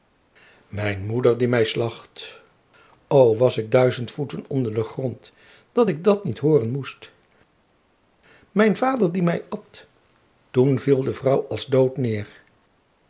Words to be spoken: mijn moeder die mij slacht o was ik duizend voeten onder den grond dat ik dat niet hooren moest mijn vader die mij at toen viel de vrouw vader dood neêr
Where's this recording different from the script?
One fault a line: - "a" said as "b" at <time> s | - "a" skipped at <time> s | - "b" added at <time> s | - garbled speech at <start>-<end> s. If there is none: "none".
- "vader" said as "als" at 11.5 s